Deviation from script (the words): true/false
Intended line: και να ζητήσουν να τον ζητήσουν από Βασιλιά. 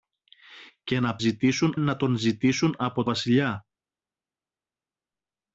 false